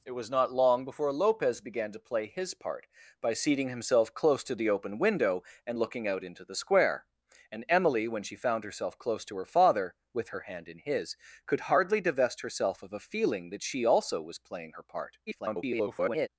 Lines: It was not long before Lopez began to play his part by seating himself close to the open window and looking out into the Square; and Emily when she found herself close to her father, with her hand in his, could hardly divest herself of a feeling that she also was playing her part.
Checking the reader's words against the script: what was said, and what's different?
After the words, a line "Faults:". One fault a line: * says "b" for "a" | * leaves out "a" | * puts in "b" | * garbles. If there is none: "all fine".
It was not long before Lopez began to play his part by seating himself close to the open window and looking out into the Square; and Emily when she found herself close to her father, with her hand in his, could hardly divest herself of a feeling that she also was playing her part. [garbled]
Faults:
* garbles